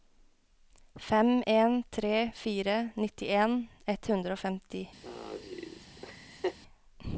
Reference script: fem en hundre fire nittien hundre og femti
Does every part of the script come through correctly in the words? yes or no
no